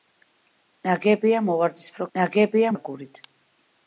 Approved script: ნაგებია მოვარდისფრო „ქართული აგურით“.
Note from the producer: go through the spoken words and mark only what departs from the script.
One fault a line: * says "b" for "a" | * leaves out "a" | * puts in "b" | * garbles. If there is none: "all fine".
* says "ნაგებია" for "ქართული"